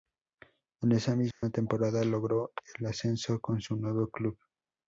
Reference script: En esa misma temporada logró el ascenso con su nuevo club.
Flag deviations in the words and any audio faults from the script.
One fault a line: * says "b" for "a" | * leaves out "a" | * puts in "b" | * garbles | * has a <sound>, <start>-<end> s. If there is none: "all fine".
* has a dropout, 1.3-1.4 s